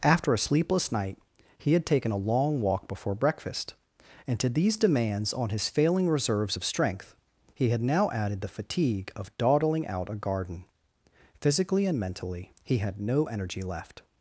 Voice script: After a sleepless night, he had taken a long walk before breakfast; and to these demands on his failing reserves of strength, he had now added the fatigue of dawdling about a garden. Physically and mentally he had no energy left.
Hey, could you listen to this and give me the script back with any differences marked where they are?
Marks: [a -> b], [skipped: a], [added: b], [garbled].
After a sleepless night, he had taken a long walk before breakfast; and to these demands on his failing reserves of strength, he had now added the fatigue of dawdling [about -> out] a garden. Physically and mentally he had no energy left.